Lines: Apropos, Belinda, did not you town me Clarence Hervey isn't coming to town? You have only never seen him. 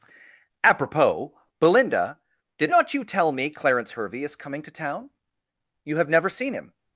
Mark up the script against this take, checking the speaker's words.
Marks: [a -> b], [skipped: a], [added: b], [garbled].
Apropos, Belinda, did not you [town -> tell] me Clarence Hervey [isn't -> is] coming to town? You have [skipped: only] never seen him.